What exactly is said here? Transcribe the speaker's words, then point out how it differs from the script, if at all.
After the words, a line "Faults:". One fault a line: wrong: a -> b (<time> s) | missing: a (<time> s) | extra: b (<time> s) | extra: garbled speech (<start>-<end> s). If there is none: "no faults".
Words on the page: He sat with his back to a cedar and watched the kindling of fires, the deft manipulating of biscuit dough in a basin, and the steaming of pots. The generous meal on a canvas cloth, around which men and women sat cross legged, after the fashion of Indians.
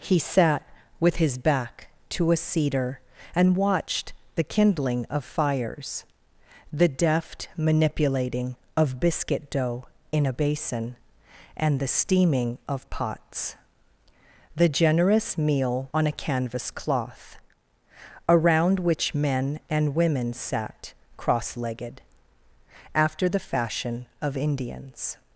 He sat with his back to a cedar and watched the kindling of fires, the deft manipulating of biscuit dough in a basin, and the steaming of pots. The generous meal on a canvas cloth, around which men and women sat cross legged, after the fashion of Indians.
Faults:
no faults